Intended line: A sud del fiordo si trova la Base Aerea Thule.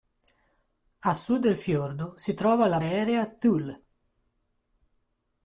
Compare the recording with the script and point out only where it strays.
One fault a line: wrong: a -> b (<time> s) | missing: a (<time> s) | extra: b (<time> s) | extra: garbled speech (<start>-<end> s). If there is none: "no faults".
missing: Base (2.8 s)